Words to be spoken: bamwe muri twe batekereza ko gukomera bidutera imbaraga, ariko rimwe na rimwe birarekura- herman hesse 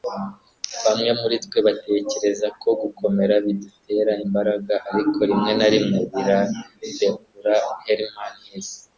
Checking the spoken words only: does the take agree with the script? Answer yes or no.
yes